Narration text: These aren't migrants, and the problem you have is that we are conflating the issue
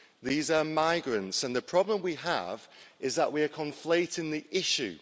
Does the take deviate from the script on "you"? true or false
true